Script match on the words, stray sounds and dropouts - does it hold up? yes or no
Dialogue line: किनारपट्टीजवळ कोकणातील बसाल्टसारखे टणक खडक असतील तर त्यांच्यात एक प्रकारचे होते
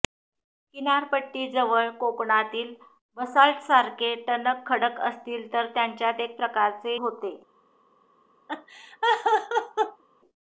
no